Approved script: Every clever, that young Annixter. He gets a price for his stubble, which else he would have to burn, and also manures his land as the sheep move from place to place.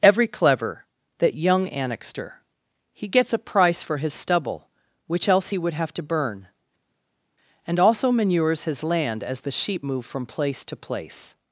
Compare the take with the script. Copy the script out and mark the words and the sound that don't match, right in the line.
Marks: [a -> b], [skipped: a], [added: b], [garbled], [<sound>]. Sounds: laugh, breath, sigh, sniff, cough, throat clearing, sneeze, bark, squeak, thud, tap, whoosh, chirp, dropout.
Every clever, that young Annixter. He gets a price for his stubble, which else he would have to burn, and also manures his land as the sheep move from place to place.